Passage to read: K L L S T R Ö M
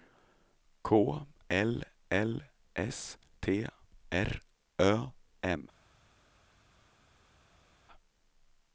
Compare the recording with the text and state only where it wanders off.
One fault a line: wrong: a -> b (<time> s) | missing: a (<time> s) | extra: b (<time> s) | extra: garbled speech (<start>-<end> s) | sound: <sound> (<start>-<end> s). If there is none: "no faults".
no faults